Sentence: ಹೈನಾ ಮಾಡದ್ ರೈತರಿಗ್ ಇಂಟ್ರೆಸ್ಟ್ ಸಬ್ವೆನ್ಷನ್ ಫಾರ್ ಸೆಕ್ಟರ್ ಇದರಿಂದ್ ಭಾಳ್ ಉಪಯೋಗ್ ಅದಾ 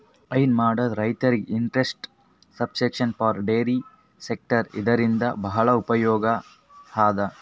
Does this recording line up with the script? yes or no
no